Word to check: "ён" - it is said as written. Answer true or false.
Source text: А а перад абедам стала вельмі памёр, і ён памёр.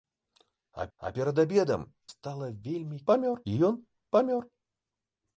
true